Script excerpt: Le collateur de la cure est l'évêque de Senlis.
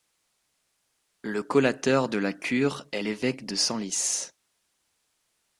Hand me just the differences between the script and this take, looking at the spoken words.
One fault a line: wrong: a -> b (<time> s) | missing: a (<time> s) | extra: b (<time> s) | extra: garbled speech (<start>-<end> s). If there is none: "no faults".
no faults